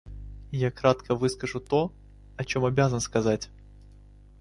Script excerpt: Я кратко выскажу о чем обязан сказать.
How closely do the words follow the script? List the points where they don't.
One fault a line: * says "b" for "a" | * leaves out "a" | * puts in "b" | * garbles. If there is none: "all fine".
* puts in "то"